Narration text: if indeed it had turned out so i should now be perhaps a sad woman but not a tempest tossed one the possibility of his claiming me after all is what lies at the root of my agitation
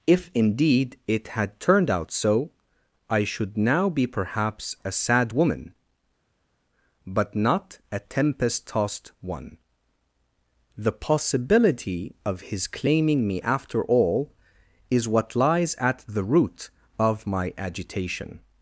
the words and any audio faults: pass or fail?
pass